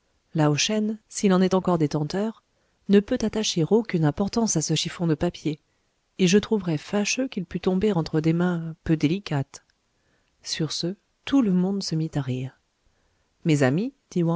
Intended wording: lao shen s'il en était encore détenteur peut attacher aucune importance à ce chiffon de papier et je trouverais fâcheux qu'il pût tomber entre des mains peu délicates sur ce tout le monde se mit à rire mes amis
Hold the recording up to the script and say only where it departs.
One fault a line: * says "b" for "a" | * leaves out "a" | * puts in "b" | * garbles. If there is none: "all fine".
* says "est" for "était"
* puts in "ne"